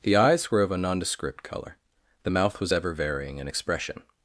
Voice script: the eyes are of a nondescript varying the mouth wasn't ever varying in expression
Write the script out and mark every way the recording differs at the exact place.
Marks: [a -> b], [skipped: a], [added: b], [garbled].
the eyes [are -> were] of a nondescript [varying -> colour] the mouth [wasn't -> was] ever varying in expression